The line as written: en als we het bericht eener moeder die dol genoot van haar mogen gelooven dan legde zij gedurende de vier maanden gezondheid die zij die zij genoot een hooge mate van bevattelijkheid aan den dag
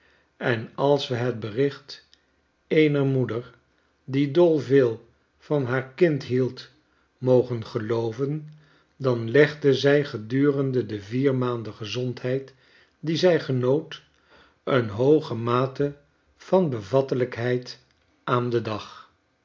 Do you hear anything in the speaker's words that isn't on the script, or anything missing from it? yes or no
yes